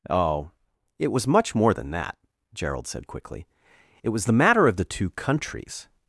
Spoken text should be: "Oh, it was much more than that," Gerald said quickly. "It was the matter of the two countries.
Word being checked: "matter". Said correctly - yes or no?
yes